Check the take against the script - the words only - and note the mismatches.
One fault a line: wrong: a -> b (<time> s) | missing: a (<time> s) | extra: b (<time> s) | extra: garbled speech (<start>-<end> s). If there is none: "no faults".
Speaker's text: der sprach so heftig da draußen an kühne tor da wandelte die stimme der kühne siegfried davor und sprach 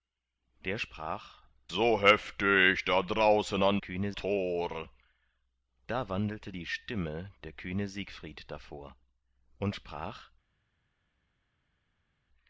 no faults